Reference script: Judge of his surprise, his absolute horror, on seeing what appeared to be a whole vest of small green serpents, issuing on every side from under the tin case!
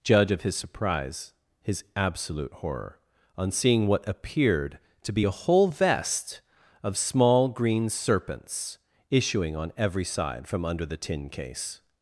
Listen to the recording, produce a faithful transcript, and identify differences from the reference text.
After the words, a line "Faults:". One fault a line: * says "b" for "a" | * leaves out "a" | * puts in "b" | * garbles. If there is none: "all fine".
Judge of his surprise, his absolute horror, on seeing what appeared to be a whole vest of small green serpents, issuing on every side from under the tin case!
Faults:
all fine